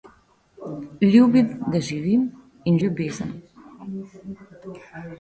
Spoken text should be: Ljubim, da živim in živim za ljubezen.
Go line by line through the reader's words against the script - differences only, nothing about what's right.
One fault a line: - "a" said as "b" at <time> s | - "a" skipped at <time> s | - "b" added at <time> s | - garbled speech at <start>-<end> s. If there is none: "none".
- "živim za" skipped at 2.8 s